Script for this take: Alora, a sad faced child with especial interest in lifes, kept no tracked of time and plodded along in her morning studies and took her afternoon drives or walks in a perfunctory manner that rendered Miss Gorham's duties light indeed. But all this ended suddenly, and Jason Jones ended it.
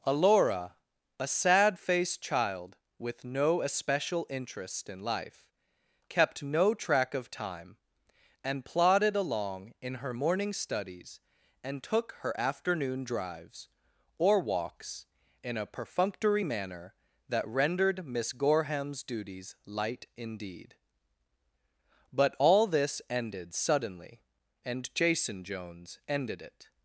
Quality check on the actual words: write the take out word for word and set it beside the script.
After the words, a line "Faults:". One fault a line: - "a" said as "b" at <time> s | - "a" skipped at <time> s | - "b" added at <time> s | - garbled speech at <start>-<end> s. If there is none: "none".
Alora, a sad faced child with no especial interest in life, kept no track of time and plodded along in her morning studies and took her afternoon drives or walks in a perfunctory manner that rendered Miss Gorham's duties light indeed. But all this ended suddenly, and Jason Jones ended it.
Faults:
- "no" added at 3.2 s
- "lifes" said as "life" at 5.0 s
- "tracked" said as "track" at 6.7 s